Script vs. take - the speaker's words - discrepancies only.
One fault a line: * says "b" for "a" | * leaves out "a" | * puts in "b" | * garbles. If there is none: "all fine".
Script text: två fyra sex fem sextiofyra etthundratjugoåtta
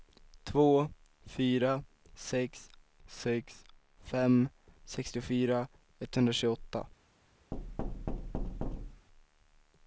* puts in "sex"